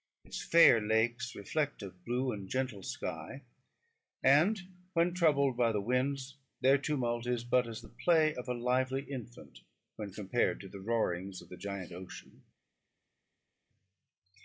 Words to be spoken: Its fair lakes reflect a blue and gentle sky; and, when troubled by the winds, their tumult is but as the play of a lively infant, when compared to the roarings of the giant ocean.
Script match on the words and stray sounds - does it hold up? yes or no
yes